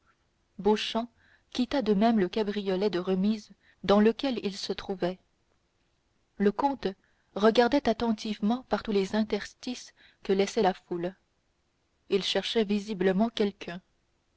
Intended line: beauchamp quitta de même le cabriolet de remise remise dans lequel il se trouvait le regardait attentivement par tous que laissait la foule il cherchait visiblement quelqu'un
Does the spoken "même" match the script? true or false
true